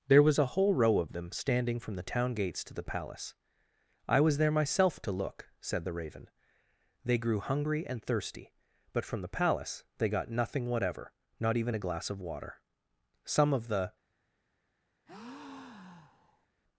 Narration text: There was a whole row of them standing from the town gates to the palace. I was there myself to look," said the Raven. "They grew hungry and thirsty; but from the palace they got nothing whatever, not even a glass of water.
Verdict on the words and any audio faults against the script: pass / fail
fail